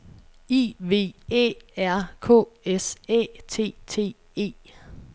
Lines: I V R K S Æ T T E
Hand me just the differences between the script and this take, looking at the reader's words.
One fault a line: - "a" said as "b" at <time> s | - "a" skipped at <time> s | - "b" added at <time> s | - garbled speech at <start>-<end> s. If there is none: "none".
- "Æ" added at 1.3 s